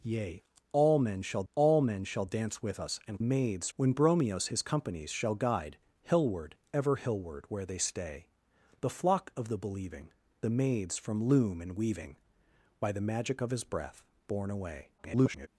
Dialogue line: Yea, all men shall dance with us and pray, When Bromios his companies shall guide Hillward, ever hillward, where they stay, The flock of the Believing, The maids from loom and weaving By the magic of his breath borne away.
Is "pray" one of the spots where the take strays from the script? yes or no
yes